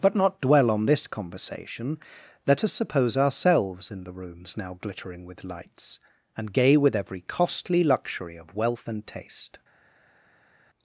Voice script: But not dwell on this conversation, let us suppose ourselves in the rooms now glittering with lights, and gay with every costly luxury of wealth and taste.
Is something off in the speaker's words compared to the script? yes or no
no